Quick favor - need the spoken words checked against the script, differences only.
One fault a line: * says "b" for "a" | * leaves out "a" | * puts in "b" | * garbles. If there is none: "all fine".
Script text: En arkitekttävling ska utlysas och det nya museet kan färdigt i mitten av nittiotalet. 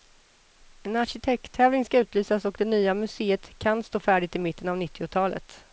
* puts in "stå"